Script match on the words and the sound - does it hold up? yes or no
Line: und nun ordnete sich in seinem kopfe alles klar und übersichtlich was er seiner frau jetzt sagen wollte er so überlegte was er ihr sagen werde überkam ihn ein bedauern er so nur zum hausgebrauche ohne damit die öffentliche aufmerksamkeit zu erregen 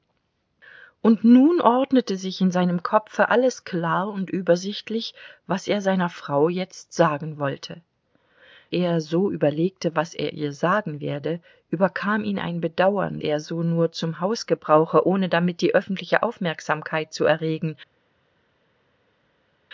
yes